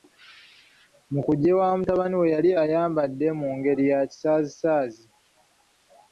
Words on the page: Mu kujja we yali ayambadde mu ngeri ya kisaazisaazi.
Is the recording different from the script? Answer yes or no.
yes